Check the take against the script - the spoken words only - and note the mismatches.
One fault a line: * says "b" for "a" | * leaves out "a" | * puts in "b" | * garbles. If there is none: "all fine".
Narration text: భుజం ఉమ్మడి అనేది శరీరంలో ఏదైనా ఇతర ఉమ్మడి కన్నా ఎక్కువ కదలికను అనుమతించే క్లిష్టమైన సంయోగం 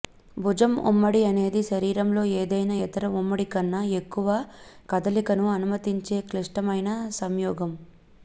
all fine